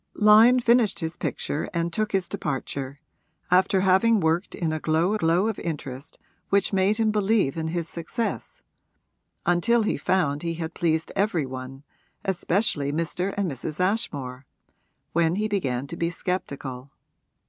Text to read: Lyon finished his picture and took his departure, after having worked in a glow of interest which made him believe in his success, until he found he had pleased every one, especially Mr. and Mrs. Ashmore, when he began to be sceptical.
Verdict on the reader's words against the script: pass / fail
fail